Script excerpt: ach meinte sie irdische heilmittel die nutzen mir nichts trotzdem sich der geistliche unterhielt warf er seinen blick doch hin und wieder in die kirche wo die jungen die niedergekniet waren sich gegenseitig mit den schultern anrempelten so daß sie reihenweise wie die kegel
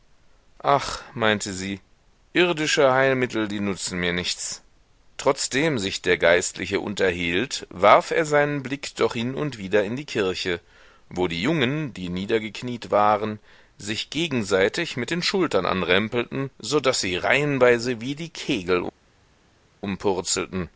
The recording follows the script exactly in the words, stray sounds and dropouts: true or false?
true